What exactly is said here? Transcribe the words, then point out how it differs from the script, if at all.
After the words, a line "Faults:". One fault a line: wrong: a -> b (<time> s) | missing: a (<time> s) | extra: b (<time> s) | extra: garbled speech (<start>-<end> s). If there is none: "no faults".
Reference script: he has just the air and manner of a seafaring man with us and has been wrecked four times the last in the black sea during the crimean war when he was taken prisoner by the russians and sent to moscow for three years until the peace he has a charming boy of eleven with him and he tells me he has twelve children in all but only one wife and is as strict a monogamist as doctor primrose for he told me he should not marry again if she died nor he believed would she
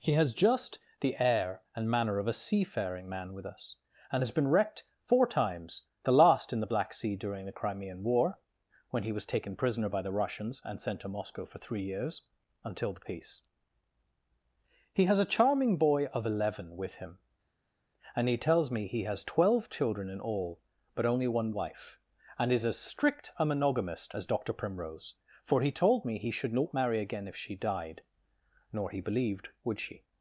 he has just the air and manner of a seafaring man with us and has been wrecked four times the last in the black sea during the crimean war when he was taken prisoner by the russians and sent to moscow for three years until the peace he has a charming boy of eleven with him and he tells me he has twelve children in all but only one wife and is as strict a monogamist as doctor primrose for he told me he should not marry again if she died nor he believed would she
Faults:
no faults